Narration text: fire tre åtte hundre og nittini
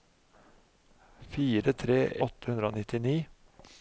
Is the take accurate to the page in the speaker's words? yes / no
yes